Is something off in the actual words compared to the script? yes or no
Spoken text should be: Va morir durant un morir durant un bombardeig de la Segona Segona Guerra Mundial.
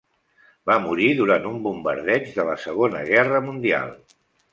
yes